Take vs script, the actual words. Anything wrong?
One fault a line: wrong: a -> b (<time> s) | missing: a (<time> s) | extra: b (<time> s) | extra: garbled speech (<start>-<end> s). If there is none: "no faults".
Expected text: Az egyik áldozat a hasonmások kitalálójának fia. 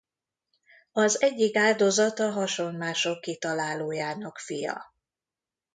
no faults